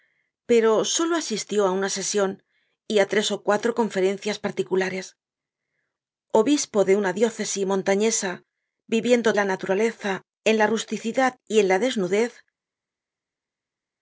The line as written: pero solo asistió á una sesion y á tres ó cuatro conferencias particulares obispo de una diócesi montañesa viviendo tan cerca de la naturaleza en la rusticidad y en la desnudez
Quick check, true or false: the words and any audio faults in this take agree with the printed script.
false